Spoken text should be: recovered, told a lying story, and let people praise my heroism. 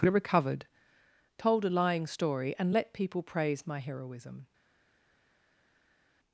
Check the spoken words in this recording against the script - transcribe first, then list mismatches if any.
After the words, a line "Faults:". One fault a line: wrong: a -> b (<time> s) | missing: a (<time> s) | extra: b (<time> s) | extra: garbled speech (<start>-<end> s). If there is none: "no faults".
recovered, told a lying story, and let people praise my heroism.
Faults:
no faults